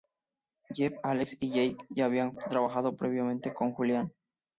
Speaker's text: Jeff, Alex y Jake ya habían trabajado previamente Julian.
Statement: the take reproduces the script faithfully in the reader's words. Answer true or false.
false